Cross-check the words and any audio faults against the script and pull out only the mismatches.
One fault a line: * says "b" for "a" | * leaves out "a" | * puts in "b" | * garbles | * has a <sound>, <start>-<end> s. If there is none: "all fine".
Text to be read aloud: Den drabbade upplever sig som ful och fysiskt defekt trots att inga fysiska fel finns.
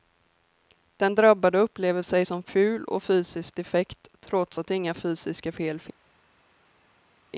all fine